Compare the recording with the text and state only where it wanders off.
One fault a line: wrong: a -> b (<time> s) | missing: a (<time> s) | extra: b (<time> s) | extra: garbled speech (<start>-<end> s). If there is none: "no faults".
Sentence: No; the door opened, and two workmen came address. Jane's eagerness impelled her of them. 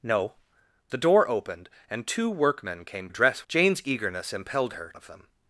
no faults